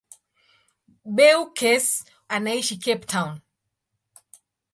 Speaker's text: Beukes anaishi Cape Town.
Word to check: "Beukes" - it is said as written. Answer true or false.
true